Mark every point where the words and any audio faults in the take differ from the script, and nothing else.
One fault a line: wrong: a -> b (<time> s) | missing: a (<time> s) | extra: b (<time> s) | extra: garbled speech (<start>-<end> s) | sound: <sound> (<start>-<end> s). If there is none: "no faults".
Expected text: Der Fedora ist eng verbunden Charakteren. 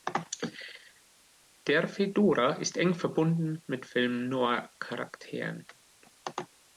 extra: mit Film Noir (3.7 s)